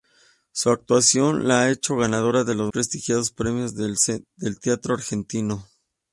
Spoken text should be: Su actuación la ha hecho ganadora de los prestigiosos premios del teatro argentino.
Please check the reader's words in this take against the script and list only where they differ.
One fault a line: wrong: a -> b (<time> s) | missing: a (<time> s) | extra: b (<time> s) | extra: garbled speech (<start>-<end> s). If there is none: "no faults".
no faults